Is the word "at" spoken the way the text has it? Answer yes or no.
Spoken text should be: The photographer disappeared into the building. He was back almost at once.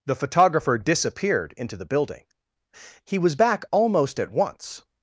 yes